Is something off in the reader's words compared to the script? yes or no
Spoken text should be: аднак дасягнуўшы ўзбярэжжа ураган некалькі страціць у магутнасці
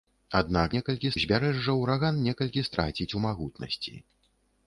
yes